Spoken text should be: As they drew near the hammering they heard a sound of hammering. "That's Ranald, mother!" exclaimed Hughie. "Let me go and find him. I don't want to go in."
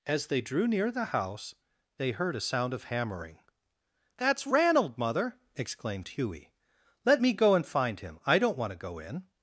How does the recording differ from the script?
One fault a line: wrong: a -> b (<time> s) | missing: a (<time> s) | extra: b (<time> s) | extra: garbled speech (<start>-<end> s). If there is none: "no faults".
wrong: hammering -> house (1.1 s)